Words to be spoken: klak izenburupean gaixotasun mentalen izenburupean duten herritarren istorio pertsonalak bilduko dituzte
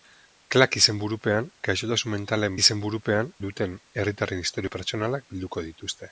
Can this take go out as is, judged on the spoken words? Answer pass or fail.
pass